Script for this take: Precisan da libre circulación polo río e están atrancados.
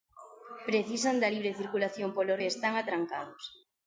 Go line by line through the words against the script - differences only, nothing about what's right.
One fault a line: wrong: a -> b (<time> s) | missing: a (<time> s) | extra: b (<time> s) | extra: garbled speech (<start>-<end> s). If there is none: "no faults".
missing: río (2.3 s)